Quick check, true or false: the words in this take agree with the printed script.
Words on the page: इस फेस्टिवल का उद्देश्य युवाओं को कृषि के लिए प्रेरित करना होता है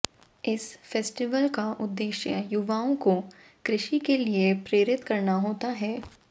true